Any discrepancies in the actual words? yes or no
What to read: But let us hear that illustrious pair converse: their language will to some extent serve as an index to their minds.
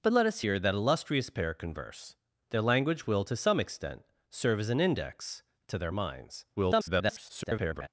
yes